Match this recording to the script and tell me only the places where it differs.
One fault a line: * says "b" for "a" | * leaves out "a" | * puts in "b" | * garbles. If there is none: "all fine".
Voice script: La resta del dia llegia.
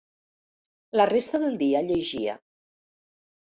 all fine